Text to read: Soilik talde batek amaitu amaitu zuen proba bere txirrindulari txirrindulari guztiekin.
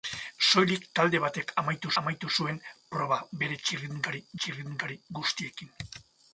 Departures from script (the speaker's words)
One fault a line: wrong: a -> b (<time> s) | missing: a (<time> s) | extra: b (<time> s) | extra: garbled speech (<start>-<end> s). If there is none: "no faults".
no faults